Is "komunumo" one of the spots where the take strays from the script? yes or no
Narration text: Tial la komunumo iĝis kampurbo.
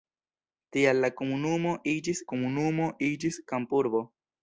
no